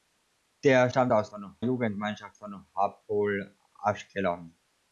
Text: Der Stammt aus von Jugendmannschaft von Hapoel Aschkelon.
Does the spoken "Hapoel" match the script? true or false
true